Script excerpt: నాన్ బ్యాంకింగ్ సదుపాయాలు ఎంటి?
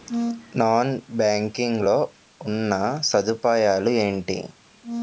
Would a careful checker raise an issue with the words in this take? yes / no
yes